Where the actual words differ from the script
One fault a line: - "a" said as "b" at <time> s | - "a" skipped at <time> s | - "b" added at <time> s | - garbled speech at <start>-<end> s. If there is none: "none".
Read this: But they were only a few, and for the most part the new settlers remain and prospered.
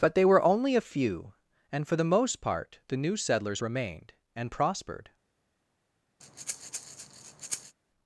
- "remain" said as "remained" at 3.6 s